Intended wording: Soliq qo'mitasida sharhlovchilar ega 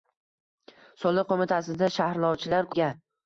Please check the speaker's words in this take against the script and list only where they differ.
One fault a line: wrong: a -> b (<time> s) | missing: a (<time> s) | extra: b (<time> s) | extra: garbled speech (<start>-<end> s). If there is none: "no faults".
no faults